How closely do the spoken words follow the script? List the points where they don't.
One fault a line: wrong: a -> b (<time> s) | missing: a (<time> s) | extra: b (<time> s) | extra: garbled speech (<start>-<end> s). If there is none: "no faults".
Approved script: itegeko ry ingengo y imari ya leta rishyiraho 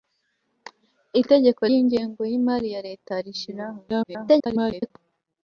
missing: ry (1.6 s)
extra: garbled speech (3.9-4.9 s)